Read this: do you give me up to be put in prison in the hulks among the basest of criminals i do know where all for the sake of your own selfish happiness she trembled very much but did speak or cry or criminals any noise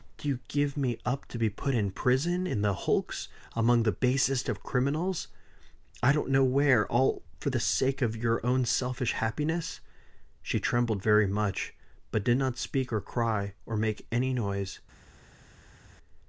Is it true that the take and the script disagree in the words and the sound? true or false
true